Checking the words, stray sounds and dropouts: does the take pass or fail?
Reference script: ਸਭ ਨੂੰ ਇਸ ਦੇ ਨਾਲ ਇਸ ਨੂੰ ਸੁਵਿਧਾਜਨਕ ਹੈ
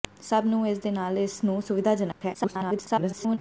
fail